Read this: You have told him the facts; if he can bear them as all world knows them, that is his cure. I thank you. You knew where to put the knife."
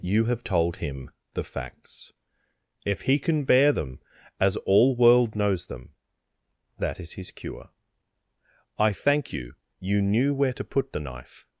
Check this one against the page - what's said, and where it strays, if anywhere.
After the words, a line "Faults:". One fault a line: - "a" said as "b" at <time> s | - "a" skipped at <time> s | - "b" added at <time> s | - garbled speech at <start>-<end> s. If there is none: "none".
You have told him the facts; if he can bear them as all world knows them, that is his cure. I thank you. You knew where to put the knife."
Faults:
none